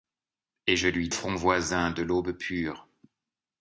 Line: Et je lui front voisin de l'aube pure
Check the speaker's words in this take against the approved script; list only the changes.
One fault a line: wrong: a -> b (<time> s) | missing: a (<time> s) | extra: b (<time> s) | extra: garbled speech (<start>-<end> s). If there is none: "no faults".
no faults